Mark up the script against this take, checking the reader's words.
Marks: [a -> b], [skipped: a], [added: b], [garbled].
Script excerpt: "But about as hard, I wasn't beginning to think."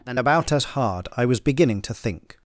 ["But -> And] about as hard, I [wasn't -> was] beginning to think."